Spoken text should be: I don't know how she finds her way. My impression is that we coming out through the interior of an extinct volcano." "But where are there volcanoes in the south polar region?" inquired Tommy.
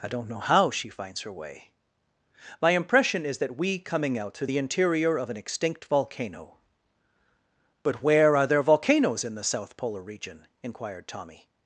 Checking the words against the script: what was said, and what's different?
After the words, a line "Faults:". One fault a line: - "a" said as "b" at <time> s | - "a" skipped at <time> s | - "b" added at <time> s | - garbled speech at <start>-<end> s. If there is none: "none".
I don't know how she finds her way. My impression is that we coming out through the interior of an extinct volcano." "But where are there volcanoes in the south polar region?" inquired Tommy.
Faults:
none